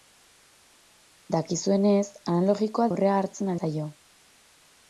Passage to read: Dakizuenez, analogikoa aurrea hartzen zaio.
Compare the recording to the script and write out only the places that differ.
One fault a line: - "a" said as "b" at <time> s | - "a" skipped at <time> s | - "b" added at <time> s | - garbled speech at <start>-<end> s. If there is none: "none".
none